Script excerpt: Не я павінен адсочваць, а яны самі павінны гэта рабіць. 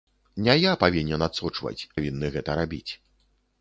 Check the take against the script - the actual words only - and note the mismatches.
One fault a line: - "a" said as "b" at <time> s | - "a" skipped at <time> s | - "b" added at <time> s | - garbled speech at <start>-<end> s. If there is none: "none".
- "а яны самі" skipped at 1.9 s